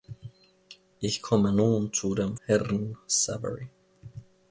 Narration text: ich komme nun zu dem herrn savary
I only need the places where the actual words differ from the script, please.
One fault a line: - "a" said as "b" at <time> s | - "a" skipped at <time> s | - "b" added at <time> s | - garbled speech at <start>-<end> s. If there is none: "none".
none